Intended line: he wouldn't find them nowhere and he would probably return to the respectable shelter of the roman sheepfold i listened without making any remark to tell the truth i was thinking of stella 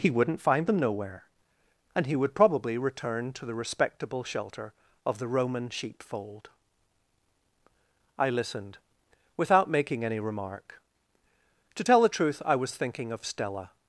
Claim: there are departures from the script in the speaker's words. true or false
false